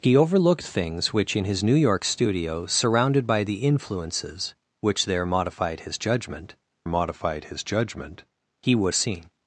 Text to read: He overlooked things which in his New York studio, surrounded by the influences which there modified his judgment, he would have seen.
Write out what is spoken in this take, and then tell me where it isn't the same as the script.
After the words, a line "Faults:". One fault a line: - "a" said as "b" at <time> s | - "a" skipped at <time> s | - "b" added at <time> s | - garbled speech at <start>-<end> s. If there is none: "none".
He overlooked things which in his New York studio, surrounded by the influences which there modified his judgment modified his judgment, he would seen.
Faults:
- "modified his judgment" added at 6.9 s
- "have" skipped at 8.9 s